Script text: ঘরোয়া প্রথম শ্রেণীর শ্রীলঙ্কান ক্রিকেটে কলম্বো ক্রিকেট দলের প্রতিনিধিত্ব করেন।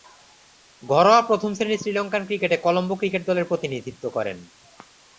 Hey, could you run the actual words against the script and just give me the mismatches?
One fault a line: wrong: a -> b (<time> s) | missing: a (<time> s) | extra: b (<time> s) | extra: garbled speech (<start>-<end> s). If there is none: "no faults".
no faults